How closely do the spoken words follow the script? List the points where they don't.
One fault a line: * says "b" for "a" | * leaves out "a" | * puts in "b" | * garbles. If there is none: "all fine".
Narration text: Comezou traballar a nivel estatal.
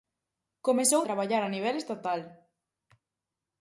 all fine